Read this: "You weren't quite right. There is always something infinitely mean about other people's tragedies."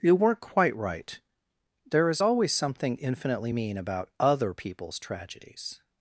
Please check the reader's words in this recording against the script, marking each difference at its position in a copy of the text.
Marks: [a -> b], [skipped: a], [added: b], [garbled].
"You weren't quite right. There is always something infinitely mean about other people's tragedies."